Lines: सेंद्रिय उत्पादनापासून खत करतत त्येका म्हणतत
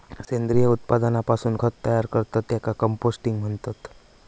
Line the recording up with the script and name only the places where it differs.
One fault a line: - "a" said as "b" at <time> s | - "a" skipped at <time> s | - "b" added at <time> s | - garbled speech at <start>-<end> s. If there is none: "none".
- "तयार" added at 1.9 s
- "कंपोस्टिंग" added at 2.8 s